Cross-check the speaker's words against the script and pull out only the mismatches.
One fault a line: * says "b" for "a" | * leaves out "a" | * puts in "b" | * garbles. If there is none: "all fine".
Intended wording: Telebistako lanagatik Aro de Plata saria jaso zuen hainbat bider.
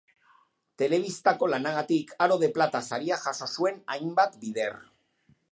all fine